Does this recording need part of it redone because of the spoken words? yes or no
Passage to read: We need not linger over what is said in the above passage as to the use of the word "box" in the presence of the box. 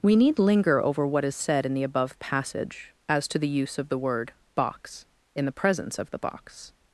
yes